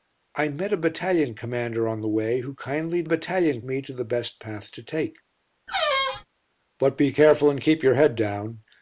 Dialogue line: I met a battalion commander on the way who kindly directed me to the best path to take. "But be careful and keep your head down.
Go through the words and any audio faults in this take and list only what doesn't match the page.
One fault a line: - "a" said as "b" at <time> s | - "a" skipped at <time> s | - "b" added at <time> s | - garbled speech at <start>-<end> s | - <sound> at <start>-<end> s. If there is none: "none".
- "directed" said as "battalion" at 3.0 s
- squeak at 5.7-6.3 s